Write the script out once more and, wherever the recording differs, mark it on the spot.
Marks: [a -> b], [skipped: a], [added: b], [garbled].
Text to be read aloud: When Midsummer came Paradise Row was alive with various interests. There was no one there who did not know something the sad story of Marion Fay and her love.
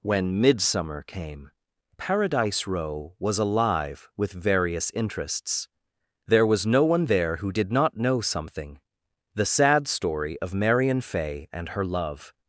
When Midsummer came Paradise Row was alive with various interests. There was no one there who did not know something the sad story of Marion Fay and her love.